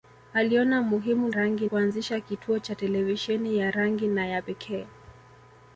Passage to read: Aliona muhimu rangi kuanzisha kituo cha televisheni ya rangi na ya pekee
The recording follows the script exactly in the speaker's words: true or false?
true